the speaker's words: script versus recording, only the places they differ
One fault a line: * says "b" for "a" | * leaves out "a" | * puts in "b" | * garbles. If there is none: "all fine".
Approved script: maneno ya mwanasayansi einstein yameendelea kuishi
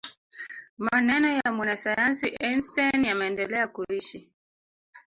all fine